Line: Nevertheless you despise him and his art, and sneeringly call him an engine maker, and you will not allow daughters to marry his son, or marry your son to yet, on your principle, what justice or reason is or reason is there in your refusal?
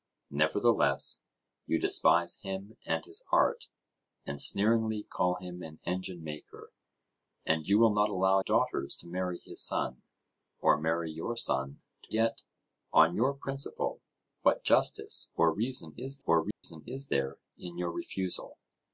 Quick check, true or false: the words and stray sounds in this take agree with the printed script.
false